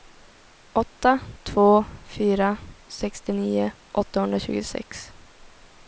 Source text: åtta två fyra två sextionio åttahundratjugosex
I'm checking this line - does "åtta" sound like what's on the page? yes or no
yes